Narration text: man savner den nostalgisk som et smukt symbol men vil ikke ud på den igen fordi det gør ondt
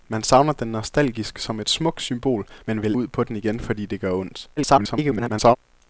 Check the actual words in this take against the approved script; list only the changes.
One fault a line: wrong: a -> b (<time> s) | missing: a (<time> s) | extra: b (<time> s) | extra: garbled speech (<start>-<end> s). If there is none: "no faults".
missing: ikke (2.9 s)
extra: garbled speech (4.6-5.6 s)